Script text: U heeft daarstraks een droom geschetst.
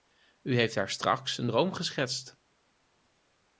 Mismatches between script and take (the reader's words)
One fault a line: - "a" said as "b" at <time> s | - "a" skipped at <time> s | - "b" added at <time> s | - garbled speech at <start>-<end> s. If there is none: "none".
none